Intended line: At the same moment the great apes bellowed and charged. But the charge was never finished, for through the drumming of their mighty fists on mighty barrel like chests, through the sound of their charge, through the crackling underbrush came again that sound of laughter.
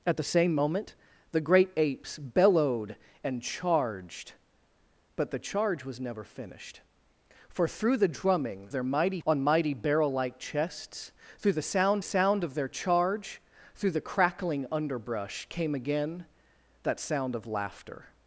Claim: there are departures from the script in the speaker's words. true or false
true